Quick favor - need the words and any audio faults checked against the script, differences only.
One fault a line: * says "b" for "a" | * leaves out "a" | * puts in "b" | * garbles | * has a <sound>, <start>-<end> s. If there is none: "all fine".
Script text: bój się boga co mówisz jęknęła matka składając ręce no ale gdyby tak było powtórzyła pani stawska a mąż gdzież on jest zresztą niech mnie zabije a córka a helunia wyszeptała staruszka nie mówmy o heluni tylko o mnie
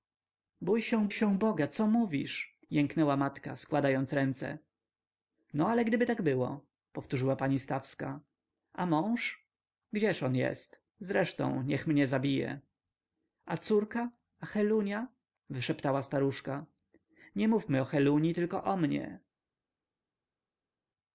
* puts in "się"